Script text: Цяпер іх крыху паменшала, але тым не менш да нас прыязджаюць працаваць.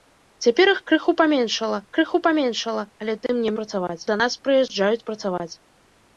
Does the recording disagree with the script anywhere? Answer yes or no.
yes